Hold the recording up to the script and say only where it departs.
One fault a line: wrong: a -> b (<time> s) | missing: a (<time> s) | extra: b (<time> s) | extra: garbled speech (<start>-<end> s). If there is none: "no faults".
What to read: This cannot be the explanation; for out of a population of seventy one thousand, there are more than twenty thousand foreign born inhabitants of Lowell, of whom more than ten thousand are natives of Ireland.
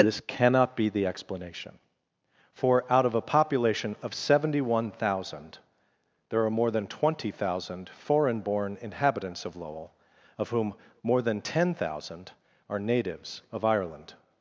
no faults